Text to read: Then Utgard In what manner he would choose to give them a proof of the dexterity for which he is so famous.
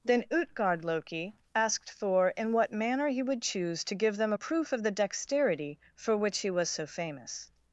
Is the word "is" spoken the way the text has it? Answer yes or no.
no